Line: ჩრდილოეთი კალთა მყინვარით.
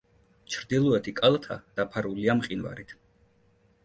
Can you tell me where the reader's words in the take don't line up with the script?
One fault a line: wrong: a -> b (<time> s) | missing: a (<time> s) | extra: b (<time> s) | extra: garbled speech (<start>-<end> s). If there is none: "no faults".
extra: დაფარულია (1.8 s)